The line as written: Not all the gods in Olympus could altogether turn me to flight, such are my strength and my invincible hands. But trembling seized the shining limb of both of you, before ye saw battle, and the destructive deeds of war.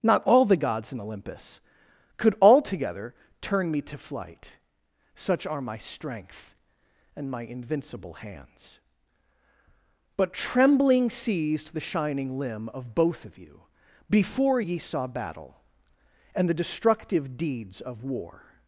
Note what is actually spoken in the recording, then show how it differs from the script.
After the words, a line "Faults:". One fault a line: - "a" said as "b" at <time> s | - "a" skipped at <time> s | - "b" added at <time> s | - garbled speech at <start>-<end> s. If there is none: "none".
Not all the gods in Olympus could altogether turn me to flight, such are my strength and my invincible hands. But trembling seized the shining limb of both of you, before ye saw battle, and the destructive deeds of war.
Faults:
none